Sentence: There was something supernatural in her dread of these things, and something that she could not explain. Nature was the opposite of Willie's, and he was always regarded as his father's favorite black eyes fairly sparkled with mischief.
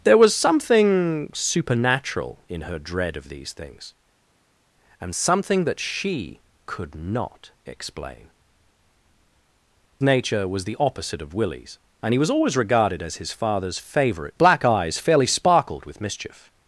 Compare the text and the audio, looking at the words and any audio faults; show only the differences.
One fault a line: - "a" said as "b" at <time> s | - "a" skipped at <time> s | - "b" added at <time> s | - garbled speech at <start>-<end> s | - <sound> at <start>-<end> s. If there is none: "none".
none